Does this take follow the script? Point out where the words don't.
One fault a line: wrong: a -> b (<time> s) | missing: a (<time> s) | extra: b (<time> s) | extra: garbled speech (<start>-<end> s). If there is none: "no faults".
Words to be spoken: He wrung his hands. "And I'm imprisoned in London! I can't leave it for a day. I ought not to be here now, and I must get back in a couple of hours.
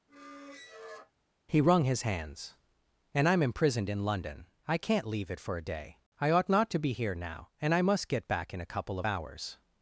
no faults